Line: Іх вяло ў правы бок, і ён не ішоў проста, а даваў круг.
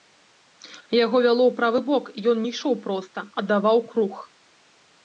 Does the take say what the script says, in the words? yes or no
no